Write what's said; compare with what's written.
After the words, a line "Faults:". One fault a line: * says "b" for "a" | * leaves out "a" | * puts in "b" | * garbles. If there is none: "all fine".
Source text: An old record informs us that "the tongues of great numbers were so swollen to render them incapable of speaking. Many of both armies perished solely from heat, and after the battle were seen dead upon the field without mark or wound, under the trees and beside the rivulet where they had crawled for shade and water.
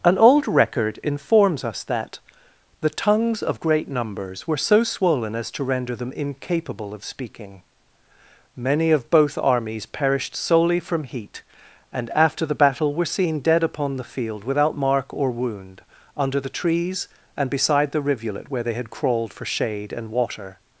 An old record informs us that "the tongues of great numbers were so swollen as to render them incapable of speaking. Many of both armies perished solely from heat, and after the battle were seen dead upon the field without mark or wound, under the trees and beside the rivulet where they had crawled for shade and water.
Faults:
* puts in "as"